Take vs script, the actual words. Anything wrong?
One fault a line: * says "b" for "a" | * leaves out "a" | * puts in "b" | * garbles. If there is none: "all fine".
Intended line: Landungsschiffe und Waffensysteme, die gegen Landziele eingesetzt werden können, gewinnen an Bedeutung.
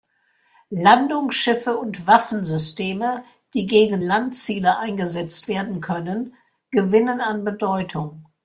all fine